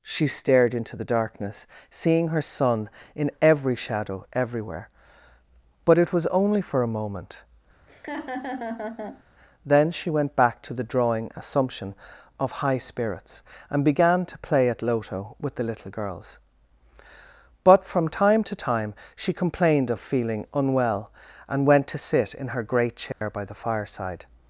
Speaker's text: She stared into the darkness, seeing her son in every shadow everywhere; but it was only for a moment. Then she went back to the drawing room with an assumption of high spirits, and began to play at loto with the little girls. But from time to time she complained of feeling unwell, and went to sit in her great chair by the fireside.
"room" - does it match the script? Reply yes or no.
no